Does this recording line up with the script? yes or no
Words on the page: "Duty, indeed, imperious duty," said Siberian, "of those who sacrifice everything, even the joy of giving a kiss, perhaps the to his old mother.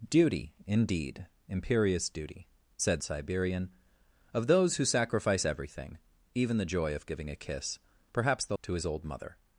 yes